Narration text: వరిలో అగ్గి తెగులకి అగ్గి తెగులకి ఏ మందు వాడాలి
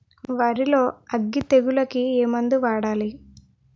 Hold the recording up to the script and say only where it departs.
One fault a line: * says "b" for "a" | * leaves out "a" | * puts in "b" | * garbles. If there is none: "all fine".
* leaves out "అగ్గి తెగులకి"